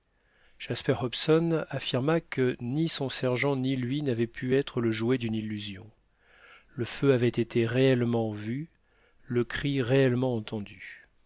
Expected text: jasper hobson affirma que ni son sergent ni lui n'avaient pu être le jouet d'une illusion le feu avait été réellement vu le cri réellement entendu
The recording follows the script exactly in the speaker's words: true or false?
true